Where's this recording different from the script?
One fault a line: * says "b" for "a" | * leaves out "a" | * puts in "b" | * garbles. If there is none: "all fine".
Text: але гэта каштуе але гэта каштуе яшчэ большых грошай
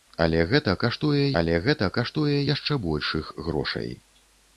all fine